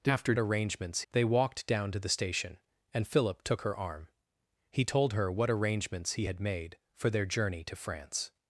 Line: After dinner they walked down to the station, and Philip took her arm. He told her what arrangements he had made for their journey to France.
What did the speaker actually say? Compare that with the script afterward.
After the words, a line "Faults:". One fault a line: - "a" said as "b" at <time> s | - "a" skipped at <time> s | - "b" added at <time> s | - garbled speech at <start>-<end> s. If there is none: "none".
After arrangements they walked down to the station, and Philip took her arm. He told her what arrangements he had made for their journey to France.
Faults:
- "dinner" said as "arrangements" at 0.4 s